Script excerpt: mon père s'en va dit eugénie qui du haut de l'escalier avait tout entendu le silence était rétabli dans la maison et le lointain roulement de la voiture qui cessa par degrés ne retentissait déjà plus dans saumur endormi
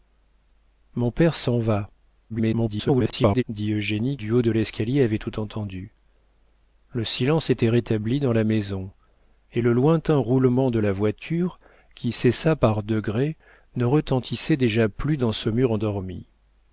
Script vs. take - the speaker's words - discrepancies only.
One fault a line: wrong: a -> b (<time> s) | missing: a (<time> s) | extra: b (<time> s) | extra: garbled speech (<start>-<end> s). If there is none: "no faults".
extra: garbled speech (2.3-3.4 s)
missing: qui (4.2 s)